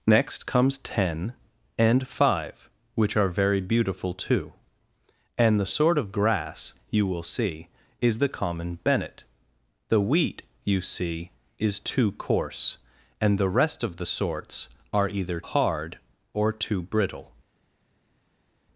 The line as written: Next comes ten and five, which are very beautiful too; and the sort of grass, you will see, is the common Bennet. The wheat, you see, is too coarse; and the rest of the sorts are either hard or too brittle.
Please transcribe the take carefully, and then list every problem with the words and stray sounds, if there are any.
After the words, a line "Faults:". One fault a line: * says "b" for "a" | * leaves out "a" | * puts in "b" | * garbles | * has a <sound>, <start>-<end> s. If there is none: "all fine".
Next comes ten and five, which are very beautiful too; and the sort of grass, you will see, is the common Bennet. The wheat, you see, is too coarse; and the rest of the sorts are either hard or too brittle.
Faults:
all fine